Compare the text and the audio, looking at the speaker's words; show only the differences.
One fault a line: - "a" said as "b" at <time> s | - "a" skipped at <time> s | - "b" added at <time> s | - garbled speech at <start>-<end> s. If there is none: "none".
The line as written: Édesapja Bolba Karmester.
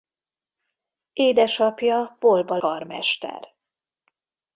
none